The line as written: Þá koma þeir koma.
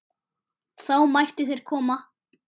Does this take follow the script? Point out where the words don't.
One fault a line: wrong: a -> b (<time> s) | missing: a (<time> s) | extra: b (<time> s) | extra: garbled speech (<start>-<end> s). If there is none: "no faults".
wrong: koma -> mættu (1.1 s)